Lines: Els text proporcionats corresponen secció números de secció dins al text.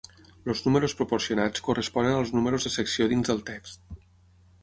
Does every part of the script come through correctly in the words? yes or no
no